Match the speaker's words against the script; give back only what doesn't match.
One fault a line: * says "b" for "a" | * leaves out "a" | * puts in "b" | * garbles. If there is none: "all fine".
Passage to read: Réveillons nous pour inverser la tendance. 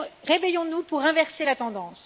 all fine